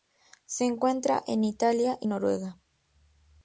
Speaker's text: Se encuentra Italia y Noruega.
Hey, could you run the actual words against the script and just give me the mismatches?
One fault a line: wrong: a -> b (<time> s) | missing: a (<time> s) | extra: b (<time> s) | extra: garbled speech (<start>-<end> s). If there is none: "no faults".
extra: en (1.3 s)